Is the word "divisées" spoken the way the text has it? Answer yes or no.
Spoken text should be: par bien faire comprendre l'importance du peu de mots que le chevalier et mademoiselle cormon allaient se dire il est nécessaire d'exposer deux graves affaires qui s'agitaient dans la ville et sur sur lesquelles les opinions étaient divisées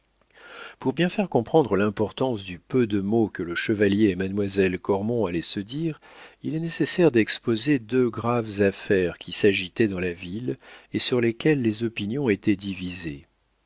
yes